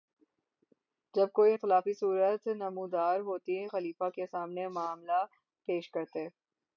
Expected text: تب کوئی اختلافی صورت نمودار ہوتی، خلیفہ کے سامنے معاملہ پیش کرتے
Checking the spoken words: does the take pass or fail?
fail